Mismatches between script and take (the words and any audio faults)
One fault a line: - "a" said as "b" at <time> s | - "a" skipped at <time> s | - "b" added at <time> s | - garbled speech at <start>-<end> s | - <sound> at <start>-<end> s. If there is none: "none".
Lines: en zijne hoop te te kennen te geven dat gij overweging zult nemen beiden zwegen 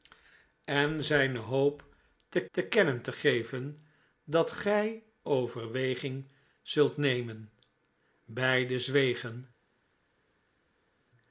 none